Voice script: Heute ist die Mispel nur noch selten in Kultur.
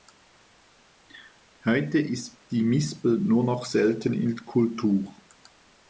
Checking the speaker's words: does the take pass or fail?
pass